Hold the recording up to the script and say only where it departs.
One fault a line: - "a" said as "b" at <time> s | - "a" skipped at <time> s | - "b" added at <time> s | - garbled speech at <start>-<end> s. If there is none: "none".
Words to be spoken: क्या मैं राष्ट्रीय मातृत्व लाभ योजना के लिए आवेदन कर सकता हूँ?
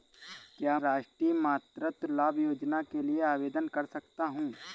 - "मैं" skipped at 0.8 s